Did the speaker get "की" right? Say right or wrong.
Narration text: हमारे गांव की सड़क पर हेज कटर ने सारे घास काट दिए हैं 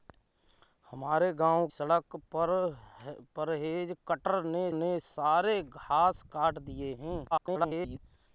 wrong